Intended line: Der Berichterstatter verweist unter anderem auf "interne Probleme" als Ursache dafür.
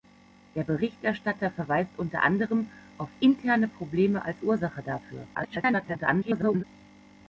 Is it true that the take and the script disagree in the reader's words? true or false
true